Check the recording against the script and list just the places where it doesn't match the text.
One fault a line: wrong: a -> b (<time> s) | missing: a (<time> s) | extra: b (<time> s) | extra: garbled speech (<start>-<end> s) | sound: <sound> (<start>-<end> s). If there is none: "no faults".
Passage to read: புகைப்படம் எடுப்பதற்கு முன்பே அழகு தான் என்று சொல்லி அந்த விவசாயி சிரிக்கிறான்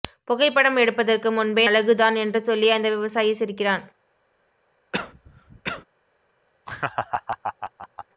sound: cough (4.9-5.8 s)
sound: laugh (6.7-8.1 s)